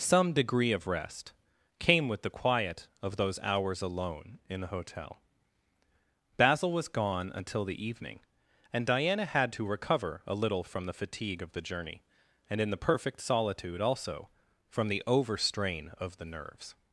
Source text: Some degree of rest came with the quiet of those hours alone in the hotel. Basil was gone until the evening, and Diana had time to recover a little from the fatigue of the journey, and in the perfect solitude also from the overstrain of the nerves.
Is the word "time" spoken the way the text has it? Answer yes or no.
no